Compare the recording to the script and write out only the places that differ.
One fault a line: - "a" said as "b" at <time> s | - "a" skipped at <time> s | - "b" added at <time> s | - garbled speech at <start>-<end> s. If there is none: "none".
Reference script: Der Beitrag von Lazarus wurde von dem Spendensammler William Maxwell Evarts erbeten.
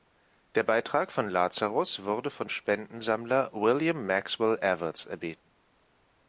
- "dem" skipped at 2.5 s